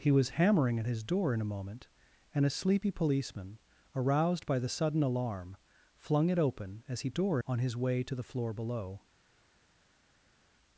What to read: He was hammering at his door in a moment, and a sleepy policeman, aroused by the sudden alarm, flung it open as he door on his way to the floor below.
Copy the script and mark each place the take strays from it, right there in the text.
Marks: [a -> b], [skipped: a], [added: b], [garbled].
He was hammering at his door in a moment, and a sleepy policeman, aroused by the sudden alarm, flung it open as he door on his way to the floor below.